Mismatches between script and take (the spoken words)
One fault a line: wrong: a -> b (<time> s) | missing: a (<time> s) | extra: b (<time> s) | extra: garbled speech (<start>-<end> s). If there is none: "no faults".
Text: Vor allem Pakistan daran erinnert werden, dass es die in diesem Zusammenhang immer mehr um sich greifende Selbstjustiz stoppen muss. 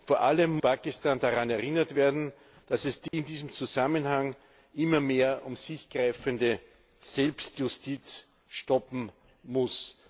no faults